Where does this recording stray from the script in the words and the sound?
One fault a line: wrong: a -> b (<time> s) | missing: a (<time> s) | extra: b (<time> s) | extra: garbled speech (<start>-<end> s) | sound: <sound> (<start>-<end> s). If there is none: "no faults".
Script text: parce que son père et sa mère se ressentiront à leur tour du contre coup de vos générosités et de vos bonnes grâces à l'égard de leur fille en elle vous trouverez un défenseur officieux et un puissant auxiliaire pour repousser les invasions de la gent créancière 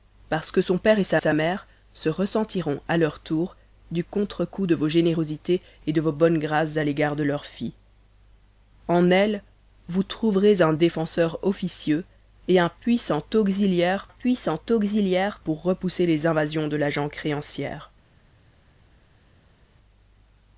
extra: sa (1.2 s)
extra: puissant auxiliaire (14.1 s)